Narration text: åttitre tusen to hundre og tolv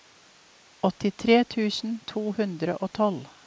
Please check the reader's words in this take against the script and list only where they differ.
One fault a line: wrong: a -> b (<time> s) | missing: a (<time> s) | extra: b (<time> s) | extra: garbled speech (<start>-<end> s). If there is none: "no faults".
no faults